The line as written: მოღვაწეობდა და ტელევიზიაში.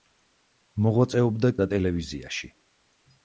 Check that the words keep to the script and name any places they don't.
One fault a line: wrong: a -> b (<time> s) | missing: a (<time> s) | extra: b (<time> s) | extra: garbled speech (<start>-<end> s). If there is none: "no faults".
no faults